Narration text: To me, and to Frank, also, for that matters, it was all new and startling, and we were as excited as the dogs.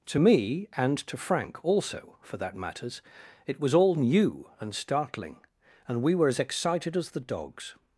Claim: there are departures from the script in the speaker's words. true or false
false